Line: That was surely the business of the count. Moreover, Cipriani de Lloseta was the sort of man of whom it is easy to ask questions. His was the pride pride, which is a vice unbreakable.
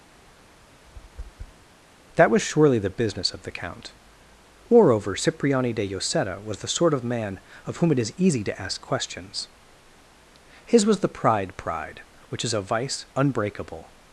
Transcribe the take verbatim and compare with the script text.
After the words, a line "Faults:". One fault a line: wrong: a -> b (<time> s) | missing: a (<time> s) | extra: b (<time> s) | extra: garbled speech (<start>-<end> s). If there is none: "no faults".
That was surely the business of the count. Moreover, Cipriani de Lloseta was the sort of man of whom it is easy to ask questions. His was the pride pride, which is a vice unbreakable.
Faults:
no faults